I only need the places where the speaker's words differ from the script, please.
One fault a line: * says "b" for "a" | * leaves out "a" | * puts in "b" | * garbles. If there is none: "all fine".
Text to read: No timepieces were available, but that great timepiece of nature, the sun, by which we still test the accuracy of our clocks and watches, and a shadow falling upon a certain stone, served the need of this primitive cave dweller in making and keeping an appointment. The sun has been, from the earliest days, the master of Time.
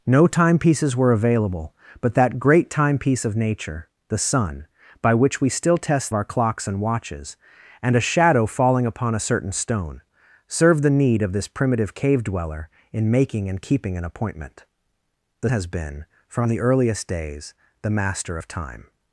* leaves out "the accuracy of"
* leaves out "sun"